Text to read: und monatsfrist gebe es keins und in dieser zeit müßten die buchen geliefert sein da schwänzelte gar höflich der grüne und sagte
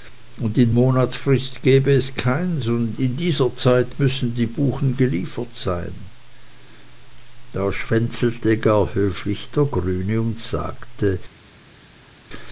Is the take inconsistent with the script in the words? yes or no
yes